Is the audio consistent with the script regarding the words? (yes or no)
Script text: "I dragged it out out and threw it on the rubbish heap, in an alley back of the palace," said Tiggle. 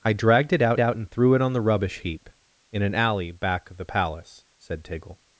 yes